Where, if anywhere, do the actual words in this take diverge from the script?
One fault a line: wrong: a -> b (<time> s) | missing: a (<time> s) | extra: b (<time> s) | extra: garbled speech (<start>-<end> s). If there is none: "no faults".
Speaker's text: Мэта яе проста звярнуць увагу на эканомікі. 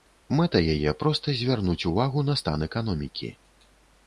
extra: стан (2.4 s)